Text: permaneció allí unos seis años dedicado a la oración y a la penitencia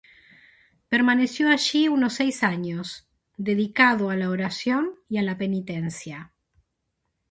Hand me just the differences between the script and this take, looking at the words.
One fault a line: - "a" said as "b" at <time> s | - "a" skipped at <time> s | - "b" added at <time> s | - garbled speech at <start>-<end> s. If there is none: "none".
none